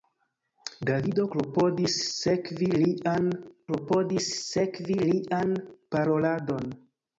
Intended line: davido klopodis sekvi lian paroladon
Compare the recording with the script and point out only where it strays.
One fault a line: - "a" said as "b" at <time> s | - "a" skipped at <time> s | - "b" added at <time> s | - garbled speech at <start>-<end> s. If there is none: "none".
- "klopodis sekvi lian" added at 3.7 s